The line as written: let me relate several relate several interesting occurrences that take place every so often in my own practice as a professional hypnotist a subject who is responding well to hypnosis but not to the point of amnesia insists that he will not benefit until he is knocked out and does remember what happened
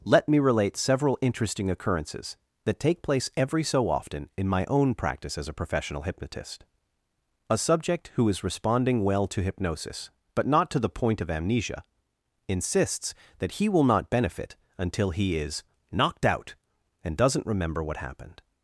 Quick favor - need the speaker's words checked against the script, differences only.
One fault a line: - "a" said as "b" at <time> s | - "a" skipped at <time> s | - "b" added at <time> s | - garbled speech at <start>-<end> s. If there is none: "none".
- "relate several" skipped at 1.2 s
- "does" said as "doesn't" at 17.2 s